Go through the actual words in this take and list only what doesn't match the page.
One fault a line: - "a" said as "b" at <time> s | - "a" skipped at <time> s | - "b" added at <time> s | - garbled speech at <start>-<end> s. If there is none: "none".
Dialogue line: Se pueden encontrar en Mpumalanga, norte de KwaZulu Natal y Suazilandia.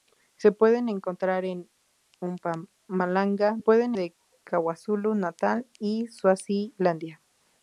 - "norte" said as "pueden" at 3.6 s